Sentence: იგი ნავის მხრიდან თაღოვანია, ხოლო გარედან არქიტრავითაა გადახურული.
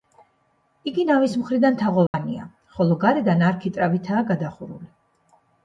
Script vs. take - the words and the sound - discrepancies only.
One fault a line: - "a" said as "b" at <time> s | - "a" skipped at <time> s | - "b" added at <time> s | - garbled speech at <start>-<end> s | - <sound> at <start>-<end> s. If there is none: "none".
- dropout at 2.1-2.1 s